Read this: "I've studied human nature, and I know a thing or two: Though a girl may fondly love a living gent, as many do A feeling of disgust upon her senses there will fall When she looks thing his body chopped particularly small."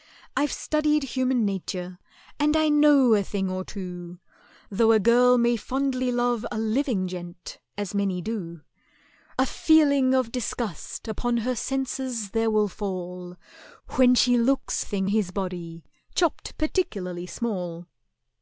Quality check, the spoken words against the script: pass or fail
pass